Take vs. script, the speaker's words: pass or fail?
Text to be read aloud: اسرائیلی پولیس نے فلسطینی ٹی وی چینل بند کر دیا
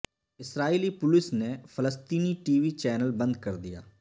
pass